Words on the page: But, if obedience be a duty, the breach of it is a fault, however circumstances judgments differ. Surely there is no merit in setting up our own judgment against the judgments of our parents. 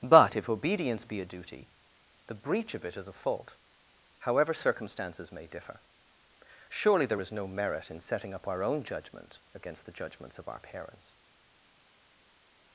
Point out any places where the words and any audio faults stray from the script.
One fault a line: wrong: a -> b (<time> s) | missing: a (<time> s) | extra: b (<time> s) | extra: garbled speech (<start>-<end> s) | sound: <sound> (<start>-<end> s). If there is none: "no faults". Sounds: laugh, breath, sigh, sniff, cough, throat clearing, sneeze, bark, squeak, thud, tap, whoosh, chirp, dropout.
wrong: judgments -> may (5.3 s)